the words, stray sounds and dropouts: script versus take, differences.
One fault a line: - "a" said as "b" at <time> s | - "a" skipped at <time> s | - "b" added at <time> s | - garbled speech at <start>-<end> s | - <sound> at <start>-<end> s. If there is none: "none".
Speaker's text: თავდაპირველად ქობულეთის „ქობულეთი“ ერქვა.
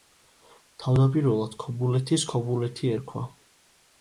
none